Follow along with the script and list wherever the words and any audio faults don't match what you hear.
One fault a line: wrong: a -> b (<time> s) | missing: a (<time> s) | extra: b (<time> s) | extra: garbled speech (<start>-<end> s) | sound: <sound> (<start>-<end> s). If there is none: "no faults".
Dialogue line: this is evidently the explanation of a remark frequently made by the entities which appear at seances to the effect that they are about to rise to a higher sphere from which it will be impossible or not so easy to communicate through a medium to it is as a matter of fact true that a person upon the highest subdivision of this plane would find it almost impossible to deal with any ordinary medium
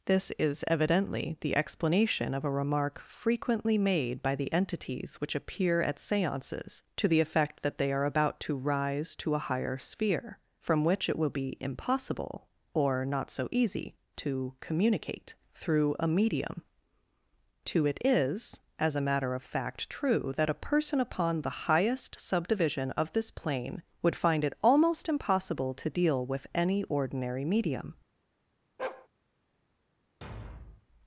sound: bark (28.8-29.1 s)
sound: thud (30.2-30.9 s)